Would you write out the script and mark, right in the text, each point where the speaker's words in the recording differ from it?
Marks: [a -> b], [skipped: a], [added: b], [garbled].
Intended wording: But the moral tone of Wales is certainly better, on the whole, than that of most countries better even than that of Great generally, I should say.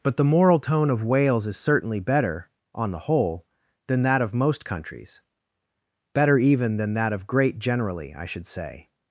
But the moral tone of Wales is certainly better, on the whole, than that of most countries better even than that of Great generally, I should say.